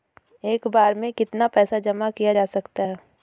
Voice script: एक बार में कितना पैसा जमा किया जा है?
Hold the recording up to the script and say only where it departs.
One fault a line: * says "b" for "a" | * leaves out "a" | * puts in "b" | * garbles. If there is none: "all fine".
* puts in "सकता"